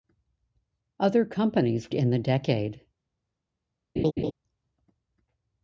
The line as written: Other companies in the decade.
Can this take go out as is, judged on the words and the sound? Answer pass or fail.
fail